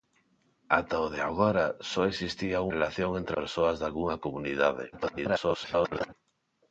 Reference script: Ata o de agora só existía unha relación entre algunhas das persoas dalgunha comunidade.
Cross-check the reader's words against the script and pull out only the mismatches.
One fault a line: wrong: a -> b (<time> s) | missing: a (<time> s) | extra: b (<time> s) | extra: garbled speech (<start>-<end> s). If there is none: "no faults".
missing: unha (2.7 s)
missing: algunhas das (3.4 s)
extra: garbled speech (4.9-6.1 s)